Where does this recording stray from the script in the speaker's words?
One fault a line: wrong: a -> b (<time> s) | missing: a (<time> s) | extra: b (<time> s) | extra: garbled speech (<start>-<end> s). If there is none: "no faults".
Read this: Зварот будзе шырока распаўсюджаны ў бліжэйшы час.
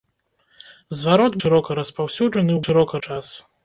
missing: будзе (1.4 s)
wrong: бліжэйшы -> шырока (2.6 s)